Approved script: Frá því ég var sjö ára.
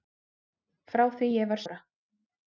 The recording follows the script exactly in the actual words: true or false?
false